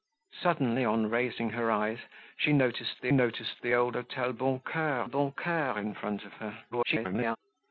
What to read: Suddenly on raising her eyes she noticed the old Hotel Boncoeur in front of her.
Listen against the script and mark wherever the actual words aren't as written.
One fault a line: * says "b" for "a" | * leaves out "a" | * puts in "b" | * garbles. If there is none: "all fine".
* puts in "noticed the"
* puts in "Boncoeur"
* garbles